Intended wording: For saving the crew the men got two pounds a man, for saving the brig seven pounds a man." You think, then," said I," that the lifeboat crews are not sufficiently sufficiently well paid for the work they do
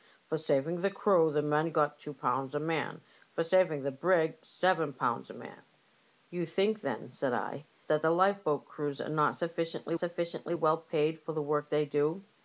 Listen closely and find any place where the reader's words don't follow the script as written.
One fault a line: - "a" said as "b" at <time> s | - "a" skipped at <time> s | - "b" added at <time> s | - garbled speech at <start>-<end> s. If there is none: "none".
none